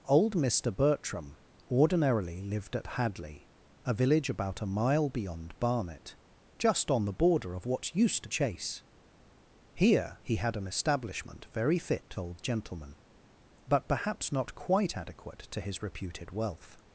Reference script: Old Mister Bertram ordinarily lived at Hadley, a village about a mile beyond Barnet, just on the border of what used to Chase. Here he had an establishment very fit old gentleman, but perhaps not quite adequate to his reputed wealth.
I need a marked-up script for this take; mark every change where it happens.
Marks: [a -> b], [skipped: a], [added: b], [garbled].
Old Mister Bertram ordinarily lived at Hadley, a village about a mile beyond Barnet, just on the border of what used to Chase. Here he had an establishment very fit old gentleman, but perhaps not quite adequate to his reputed wealth.